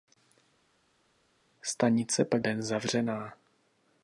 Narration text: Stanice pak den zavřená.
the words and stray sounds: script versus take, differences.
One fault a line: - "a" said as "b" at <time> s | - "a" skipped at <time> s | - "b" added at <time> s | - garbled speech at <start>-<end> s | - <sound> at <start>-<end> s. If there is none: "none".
none